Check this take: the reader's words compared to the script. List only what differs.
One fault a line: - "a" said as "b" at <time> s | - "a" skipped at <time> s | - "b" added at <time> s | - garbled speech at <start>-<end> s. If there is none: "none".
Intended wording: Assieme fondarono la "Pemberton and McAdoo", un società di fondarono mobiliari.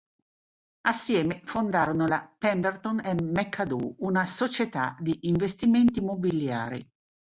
- "un" said as "una" at 4.0 s
- "fondarono" said as "investimenti" at 5.2 s